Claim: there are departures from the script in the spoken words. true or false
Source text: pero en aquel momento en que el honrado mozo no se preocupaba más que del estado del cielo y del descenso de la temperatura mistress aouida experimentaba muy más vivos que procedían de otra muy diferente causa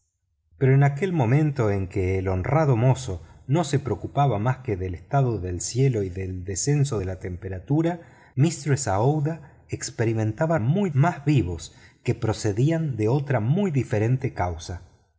false